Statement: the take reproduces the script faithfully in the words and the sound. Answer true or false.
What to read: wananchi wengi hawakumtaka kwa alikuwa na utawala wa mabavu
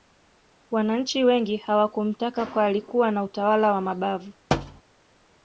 false